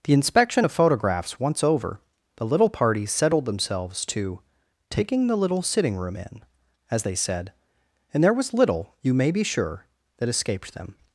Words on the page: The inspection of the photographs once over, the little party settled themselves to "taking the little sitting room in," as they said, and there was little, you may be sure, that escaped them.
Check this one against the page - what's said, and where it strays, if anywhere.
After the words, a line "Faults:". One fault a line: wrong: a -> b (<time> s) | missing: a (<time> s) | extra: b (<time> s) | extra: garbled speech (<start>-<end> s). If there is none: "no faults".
The inspection of photographs once over, the little party settled themselves to "taking the little sitting room in," as they said, and there was little, you may be sure, that escaped them.
Faults:
missing: the (0.7 s)